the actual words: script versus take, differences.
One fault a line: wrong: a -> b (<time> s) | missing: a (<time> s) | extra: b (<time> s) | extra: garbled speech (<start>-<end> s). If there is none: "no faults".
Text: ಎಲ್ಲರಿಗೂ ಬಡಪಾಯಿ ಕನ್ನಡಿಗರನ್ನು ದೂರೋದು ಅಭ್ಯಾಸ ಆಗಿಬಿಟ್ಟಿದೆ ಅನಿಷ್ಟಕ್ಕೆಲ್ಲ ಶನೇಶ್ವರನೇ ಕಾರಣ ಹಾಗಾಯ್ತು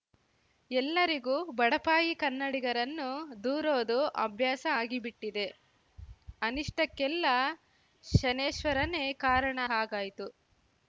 no faults